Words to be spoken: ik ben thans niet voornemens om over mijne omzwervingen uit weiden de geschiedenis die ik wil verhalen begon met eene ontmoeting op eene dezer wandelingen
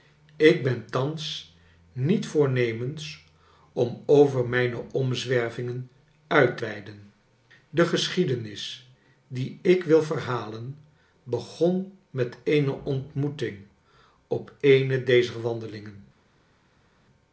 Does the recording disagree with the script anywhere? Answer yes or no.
no